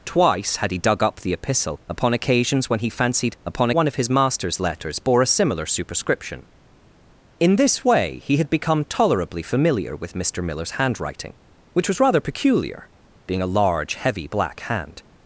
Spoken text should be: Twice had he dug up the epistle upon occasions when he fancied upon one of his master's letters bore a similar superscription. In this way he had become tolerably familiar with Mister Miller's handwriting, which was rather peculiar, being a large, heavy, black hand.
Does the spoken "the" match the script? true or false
true